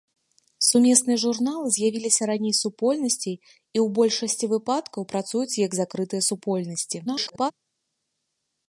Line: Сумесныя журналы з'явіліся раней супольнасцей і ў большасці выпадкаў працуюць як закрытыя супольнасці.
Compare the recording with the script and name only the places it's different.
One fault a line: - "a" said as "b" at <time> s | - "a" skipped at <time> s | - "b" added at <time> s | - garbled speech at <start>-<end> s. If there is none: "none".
- garbled speech at 7.1-7.5 s